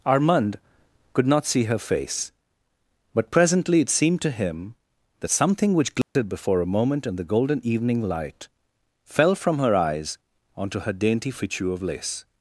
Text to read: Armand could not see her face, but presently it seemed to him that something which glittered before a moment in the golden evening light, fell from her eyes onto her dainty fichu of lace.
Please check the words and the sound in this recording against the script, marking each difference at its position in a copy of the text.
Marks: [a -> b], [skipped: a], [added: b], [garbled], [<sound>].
Armand could not see her face, but presently it seemed to him that something which glittered [dropout] before a moment in the golden evening light, fell from her eyes onto her dainty fichu of lace.